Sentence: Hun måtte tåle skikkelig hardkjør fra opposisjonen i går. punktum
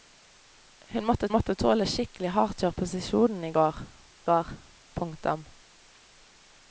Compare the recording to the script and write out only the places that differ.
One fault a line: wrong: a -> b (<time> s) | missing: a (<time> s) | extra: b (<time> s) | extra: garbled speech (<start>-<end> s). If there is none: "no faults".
extra: måtte (1.3 s)
missing: fra (2.7 s)
extra: går (4.3 s)